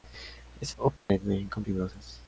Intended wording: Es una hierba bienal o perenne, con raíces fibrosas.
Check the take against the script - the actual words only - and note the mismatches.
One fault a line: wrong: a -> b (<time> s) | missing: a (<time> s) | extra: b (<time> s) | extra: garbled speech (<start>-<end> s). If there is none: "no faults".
missing: una hierba bienal (0.8 s)
missing: raíces (1.6 s)